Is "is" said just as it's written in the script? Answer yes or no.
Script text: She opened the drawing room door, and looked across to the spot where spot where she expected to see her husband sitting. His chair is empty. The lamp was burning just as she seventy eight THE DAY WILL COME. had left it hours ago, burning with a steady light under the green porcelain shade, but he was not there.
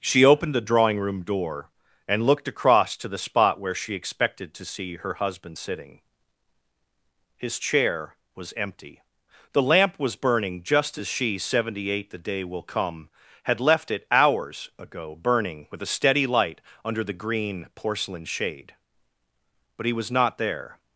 no